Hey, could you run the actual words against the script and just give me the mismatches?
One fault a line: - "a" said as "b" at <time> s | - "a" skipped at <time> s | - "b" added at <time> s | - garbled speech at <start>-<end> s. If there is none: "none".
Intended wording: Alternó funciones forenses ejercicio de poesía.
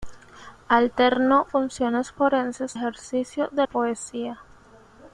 none